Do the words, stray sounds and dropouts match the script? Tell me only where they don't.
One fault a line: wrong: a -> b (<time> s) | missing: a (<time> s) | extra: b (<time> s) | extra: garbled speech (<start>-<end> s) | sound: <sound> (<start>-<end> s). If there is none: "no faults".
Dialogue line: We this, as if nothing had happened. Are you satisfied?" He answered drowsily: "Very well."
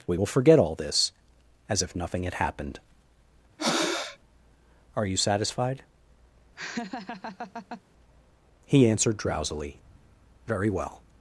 extra: will forget all (0.1 s)
sound: breath (3.6-4.2 s)
sound: laugh (6.6-7.8 s)